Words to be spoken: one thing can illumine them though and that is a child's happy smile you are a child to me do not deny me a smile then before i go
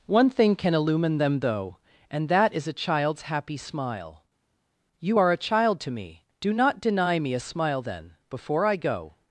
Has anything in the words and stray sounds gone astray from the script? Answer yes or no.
no